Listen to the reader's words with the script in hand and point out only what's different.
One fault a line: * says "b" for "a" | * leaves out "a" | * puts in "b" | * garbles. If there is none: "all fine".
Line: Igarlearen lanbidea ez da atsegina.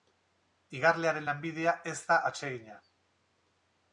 all fine